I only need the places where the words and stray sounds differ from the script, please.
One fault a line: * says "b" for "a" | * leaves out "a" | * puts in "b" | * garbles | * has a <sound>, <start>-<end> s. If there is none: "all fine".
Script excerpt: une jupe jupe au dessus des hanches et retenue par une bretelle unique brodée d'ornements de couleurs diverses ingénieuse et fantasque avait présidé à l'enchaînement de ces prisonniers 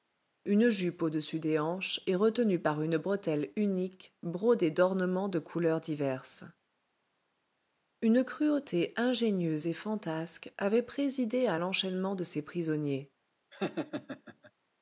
* leaves out "jupe"
* puts in "une cruauté"
* has a laugh, 13.5-14.5 s